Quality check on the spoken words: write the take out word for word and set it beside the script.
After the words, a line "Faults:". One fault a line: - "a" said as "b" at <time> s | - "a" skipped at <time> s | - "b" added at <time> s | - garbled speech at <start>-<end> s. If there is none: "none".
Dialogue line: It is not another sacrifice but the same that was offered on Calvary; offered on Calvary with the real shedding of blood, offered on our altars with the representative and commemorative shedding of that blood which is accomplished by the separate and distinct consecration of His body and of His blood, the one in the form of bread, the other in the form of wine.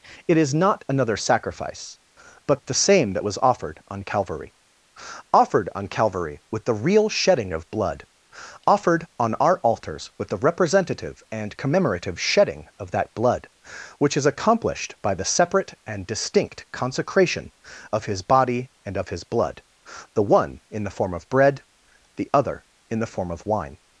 It is not another sacrifice but the same that was offered on Calvary; offered on Calvary with the real shedding of blood, offered on our altars with the representative and commemorative shedding of that blood which is accomplished by the separate and distinct consecration of His body and of His blood, the one in the form of bread, the other in the form of wine.
Faults:
none